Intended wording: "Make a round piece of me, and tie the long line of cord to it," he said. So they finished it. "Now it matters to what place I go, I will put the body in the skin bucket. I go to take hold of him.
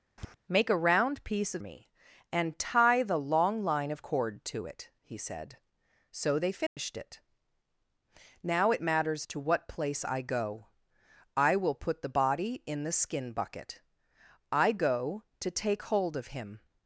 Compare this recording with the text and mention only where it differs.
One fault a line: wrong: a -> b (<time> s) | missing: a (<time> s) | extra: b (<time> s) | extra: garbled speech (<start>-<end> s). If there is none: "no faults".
no faults